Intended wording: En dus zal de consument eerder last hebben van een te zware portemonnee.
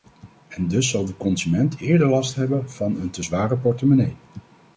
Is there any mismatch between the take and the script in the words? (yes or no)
no